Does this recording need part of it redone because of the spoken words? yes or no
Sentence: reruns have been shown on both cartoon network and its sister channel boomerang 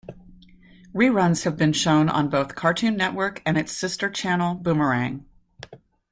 no